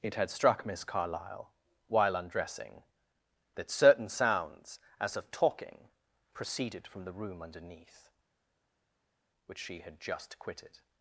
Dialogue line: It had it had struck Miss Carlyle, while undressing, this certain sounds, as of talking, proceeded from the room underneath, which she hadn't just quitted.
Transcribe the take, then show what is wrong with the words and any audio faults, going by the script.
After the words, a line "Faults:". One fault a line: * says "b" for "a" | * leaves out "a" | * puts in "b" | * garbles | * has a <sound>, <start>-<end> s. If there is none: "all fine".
It had struck Miss Carlyle, while undressing, that certain sounds, as of talking, proceeded from the room underneath, which she had just quitted.
Faults:
* leaves out "it had"
* says "that" for "this"
* says "had" for "hadn't"